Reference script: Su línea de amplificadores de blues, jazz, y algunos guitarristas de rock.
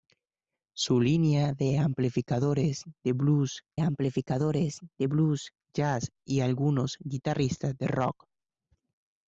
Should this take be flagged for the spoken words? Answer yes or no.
yes